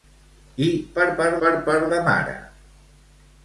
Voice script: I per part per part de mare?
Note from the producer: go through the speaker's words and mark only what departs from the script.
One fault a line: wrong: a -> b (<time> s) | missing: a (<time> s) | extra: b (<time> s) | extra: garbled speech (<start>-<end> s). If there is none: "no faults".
no faults